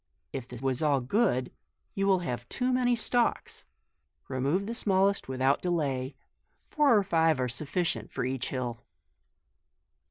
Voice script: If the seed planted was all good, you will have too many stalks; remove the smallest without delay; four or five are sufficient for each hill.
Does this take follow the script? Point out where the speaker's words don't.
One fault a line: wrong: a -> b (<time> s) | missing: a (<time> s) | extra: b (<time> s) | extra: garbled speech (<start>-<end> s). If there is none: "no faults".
missing: seed planted (0.6 s)